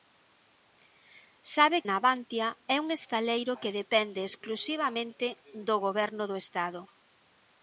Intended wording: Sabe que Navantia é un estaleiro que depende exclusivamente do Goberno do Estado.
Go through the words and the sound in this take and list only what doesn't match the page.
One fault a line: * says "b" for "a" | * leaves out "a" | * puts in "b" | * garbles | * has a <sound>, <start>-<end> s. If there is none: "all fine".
* leaves out "que"